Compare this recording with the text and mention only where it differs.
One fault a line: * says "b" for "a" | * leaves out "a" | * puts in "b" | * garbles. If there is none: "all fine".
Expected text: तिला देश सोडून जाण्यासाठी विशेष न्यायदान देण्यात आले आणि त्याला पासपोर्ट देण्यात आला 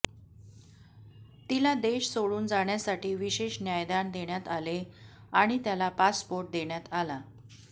all fine